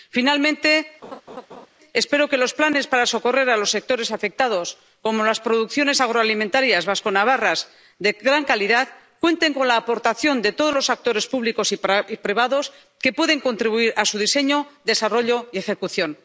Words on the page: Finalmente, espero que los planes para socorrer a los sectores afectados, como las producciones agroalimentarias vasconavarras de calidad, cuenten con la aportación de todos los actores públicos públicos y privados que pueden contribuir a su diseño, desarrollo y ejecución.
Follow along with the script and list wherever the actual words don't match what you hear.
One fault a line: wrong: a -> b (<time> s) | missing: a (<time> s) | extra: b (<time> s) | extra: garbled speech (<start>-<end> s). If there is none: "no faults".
extra: gran (8.1 s)
missing: públicos (11.7 s)